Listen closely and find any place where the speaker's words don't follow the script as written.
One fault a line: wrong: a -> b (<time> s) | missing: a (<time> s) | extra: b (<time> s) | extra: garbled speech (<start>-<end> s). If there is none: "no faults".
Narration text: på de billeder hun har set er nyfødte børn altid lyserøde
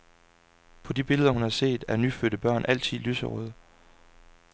no faults